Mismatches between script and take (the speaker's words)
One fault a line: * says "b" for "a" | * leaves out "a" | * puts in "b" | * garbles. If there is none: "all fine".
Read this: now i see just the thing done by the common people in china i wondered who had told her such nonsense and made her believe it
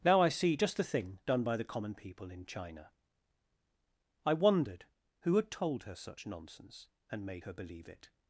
all fine